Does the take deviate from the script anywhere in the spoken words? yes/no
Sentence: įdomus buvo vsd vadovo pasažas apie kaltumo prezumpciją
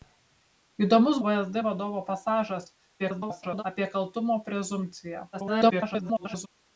yes